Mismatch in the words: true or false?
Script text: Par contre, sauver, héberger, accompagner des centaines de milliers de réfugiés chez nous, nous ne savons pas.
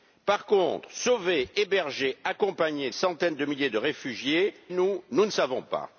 true